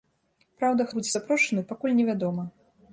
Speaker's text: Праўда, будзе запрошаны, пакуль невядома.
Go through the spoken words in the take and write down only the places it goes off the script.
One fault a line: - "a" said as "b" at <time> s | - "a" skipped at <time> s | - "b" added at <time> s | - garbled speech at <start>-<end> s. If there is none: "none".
none